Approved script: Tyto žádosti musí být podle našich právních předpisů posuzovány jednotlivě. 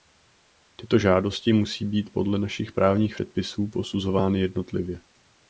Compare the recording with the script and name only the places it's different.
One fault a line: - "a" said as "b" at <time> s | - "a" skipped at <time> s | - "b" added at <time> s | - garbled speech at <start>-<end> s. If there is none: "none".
none